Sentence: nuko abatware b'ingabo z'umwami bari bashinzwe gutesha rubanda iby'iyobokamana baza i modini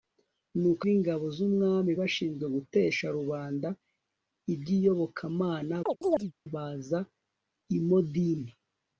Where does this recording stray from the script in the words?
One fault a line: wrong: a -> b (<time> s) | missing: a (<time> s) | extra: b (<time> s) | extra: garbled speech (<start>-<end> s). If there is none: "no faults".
missing: abatware (0.8 s)
missing: bari (1.9 s)